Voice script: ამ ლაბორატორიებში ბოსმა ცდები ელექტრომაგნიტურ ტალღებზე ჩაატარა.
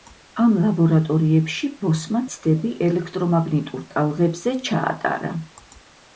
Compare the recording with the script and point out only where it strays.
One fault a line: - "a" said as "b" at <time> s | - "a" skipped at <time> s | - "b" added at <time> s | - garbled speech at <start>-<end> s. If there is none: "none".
none